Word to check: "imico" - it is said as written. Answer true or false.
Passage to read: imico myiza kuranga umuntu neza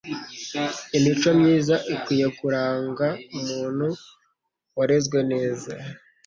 true